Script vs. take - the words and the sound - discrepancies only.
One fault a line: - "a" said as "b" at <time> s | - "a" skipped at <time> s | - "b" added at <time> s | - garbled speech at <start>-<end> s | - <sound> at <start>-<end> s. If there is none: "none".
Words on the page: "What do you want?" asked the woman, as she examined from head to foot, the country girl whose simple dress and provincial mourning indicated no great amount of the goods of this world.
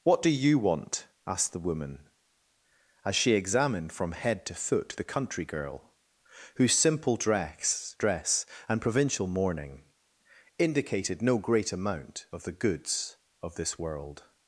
- "dress" added at 8.0 s